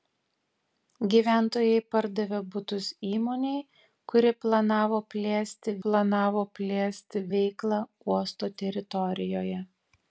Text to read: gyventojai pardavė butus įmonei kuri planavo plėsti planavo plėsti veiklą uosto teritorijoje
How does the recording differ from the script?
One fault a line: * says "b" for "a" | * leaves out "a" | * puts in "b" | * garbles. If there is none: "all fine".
all fine